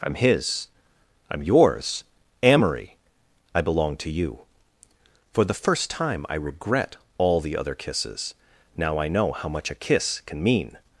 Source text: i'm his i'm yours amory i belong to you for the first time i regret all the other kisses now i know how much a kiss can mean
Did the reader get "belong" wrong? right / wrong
right